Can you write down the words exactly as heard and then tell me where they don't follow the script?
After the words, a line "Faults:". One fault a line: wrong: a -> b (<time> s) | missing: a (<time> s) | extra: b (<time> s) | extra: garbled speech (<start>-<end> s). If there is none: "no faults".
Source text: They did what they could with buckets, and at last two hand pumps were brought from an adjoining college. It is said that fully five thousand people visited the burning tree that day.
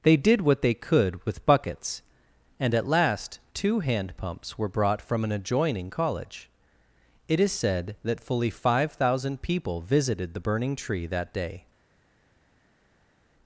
They did what they could with buckets, and at last two hand pumps were brought from an adjoining college. It is said that fully five thousand people visited the burning tree that day.
Faults:
no faults